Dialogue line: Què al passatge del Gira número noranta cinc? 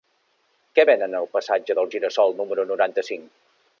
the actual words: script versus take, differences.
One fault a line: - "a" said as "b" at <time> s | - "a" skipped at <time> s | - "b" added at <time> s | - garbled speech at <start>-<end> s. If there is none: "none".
- "venen" added at 0.9 s
- "sol" added at 2.2 s